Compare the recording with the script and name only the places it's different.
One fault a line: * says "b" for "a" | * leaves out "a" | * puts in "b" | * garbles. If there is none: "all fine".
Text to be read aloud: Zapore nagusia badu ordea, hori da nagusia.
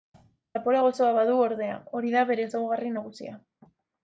* says "gozoa" for "nagusia"
* puts in "bere ezaugarri"